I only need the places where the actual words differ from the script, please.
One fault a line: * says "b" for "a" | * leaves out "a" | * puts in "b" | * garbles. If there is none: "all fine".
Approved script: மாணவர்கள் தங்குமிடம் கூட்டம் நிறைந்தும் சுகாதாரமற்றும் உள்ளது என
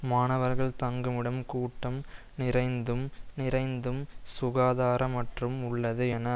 * puts in "நிறைந்தும்"